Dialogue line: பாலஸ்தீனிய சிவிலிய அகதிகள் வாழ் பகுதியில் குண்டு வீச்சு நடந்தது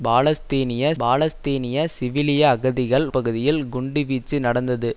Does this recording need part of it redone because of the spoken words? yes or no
yes